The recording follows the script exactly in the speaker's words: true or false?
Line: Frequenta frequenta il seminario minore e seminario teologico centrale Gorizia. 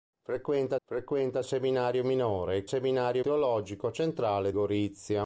true